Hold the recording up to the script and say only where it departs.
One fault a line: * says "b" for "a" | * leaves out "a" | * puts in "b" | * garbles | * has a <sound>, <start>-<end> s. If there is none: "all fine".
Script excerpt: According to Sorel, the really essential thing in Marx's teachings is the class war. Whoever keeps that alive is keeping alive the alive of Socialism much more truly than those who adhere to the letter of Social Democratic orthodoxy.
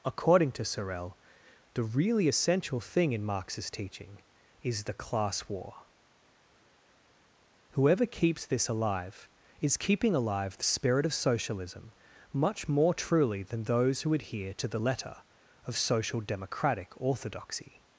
* says "teaching" for "teachings"
* says "this" for "that"
* says "spirit" for "alive"